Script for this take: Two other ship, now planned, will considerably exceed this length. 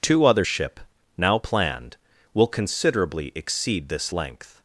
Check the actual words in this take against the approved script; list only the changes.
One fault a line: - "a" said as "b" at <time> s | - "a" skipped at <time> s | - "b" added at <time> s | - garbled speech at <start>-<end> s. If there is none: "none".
none